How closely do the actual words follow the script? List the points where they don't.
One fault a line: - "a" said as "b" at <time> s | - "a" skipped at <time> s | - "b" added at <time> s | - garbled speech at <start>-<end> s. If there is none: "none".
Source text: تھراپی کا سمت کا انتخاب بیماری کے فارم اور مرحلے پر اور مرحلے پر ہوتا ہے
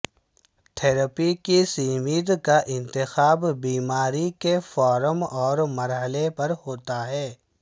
- "کا" said as "کی" at 1.4 s
- "اور مرحلے پر" skipped at 6.5 s